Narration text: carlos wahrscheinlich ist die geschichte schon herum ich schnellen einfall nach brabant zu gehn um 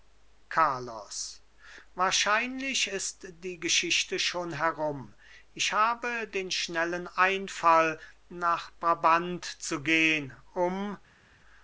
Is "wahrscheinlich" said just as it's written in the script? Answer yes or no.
yes